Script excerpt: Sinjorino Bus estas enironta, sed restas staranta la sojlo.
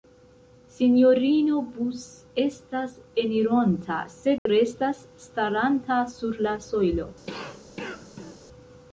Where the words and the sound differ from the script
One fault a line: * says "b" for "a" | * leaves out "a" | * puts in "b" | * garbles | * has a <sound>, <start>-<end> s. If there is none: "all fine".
* has a dropout, 4.4-4.5 s
* puts in "sur"
* has a cough, 7.3-8.4 s